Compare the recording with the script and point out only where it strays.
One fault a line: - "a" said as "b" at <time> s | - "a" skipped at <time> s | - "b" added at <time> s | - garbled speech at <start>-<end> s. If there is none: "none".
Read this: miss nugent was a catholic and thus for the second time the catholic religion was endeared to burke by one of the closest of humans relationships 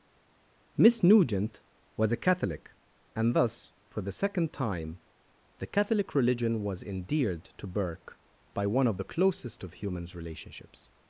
none